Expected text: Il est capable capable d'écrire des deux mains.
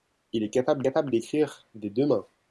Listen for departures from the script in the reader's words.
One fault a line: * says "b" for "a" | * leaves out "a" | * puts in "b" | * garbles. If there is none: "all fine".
all fine